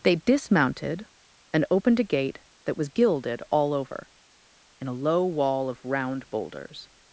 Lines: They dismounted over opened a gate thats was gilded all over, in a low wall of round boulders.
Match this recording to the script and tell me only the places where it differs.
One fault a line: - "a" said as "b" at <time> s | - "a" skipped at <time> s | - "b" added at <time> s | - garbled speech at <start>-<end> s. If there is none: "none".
- "over" said as "and" at 1.5 s
- "thats" said as "that" at 2.6 s